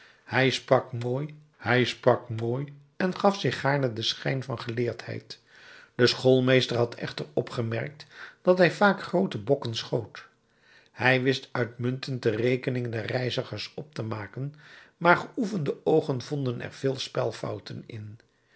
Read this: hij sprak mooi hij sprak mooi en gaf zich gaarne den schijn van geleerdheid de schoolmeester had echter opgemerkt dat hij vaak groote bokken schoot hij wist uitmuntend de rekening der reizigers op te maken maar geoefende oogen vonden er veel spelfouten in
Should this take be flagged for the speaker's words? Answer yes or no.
no